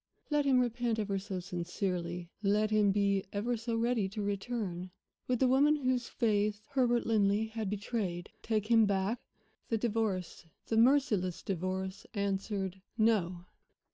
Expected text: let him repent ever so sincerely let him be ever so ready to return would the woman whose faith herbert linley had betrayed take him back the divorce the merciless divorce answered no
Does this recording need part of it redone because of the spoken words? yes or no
no